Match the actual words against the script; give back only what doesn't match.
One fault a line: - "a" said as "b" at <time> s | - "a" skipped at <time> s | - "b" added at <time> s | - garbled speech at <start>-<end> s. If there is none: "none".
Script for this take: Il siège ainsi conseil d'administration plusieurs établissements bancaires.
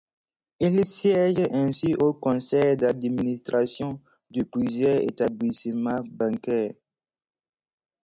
- "au" added at 2.0 s
- "de" added at 4.3 s